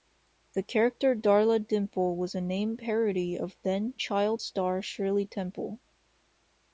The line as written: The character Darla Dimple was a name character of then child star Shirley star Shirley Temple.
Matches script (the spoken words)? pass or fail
fail